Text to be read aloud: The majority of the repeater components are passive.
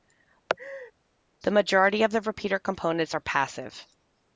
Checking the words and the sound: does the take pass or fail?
fail